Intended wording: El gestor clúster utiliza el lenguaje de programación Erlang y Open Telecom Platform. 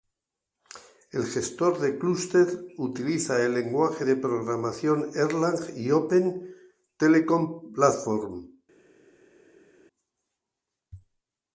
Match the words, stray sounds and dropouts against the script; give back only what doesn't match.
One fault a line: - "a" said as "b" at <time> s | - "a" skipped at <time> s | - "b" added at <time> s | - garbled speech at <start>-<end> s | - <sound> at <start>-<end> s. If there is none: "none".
- "de" added at 1.8 s